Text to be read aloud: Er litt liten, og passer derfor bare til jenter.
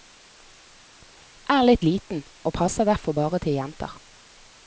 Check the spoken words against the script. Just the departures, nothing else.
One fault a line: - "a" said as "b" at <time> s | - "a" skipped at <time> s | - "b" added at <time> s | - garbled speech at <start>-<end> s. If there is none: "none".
none